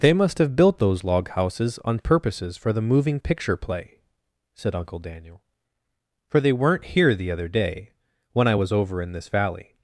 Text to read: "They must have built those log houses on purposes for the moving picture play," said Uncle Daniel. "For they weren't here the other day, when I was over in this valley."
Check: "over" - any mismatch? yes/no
no